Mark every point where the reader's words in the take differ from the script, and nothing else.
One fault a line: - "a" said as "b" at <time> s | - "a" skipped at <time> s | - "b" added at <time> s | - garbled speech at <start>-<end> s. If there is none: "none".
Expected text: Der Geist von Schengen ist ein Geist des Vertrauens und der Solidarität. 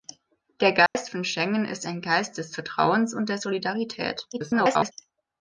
- garbled speech at 4.3-4.9 s